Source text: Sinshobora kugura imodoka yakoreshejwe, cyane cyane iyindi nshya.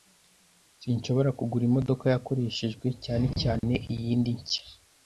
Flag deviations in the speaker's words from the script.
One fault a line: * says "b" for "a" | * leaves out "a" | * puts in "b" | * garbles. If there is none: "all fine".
all fine